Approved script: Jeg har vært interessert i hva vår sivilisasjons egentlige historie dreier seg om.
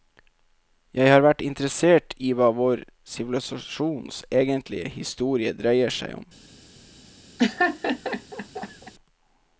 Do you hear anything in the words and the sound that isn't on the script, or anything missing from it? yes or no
yes